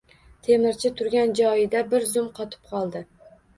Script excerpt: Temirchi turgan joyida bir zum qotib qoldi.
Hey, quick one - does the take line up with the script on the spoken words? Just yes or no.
yes